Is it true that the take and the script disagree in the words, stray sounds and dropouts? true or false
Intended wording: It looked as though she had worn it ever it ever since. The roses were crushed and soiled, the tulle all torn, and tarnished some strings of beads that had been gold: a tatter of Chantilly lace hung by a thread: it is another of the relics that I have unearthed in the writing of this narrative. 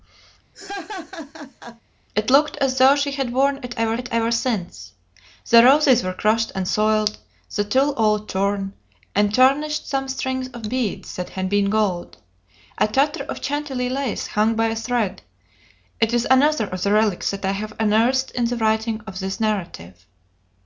true